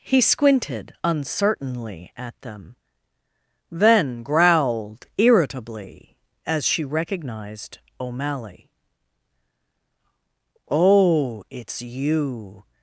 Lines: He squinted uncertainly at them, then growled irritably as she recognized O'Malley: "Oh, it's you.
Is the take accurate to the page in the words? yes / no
yes